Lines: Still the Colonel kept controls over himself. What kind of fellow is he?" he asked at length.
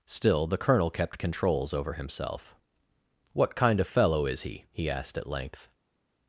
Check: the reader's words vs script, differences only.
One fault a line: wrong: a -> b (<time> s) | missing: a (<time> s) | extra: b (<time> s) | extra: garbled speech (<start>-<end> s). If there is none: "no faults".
no faults